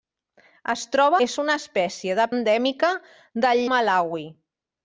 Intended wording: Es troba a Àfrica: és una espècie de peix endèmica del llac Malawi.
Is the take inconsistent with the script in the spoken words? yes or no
yes